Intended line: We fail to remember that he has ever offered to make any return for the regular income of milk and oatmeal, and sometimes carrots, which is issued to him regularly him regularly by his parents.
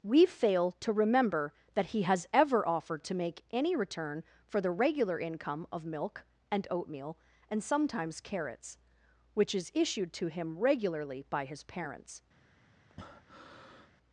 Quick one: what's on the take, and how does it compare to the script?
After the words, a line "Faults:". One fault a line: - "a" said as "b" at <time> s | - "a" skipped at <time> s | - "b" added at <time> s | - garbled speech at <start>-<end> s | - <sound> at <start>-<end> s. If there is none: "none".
We fail to remember that he has ever offered to make any return for the regular income of milk and oatmeal, and sometimes carrots, which is issued to him regularly by his parents.
Faults:
- "him regularly" skipped at 11.2 s
- breath at 12.9-13.9 s